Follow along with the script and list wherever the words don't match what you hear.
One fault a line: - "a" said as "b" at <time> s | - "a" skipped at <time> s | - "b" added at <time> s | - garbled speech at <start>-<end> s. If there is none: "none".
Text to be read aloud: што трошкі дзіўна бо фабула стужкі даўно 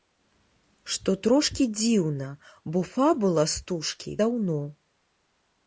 none